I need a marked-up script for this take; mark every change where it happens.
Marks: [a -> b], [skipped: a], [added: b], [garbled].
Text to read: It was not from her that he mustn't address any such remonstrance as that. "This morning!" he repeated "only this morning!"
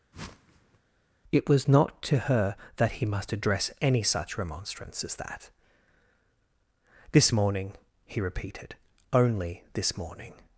It was not [from -> to] her that he [mustn't -> must] address any such remonstrance as that. "This morning!" he repeated "only this morning!"